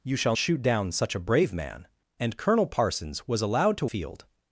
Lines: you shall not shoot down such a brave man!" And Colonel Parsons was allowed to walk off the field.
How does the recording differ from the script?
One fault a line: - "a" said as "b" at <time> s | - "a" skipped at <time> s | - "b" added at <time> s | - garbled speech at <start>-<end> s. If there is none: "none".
- "not" skipped at 0.3 s
- "walk off the" skipped at 3.9 s